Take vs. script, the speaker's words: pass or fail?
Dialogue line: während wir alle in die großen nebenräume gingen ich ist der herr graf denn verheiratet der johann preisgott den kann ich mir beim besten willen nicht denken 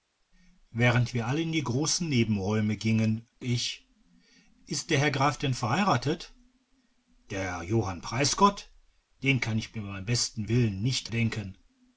pass